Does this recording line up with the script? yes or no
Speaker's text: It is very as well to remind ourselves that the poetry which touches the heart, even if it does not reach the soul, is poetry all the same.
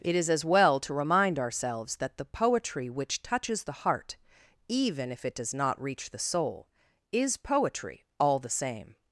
no